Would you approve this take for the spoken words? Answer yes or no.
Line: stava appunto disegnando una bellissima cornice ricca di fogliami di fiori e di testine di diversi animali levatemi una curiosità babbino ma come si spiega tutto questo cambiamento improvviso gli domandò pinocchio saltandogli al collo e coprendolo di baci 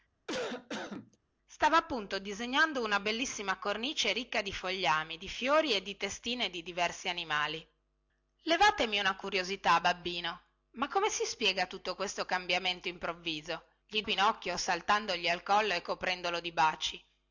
no